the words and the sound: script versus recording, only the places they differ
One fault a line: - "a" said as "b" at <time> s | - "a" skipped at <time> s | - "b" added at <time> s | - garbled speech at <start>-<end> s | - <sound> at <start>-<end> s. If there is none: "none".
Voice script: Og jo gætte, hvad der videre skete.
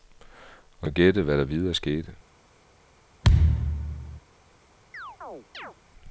- thud at 3.2-4.2 s
- chirp at 4.9-5.8 s